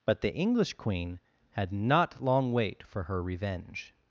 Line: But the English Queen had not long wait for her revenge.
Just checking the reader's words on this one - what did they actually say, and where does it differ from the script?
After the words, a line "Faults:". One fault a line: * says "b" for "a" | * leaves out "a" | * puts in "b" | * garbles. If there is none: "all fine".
But the English Queen had not long wait for her revenge.
Faults:
all fine